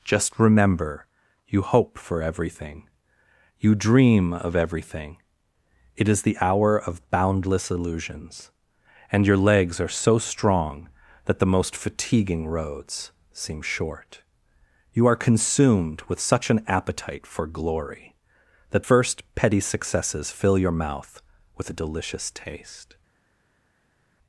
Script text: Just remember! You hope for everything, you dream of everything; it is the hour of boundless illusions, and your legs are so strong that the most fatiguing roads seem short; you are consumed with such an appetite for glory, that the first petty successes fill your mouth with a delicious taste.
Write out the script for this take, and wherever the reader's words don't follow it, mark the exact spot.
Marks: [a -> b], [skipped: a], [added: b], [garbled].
Just remember! You hope for everything, you dream of everything; it is the hour of boundless illusions, and your legs are so strong that the most fatiguing roads seem short; you are consumed with such an appetite for glory, that [skipped: the] first petty successes fill your mouth with a delicious taste.